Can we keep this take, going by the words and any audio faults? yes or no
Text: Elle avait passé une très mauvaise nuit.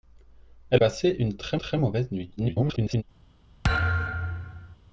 no